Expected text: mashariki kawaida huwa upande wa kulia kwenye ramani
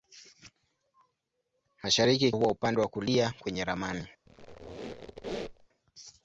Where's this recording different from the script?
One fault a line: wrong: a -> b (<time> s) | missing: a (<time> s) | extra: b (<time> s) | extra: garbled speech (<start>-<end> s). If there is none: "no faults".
missing: kawaida (2.3 s)